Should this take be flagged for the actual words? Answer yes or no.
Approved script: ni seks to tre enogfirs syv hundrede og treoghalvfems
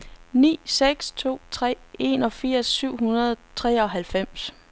no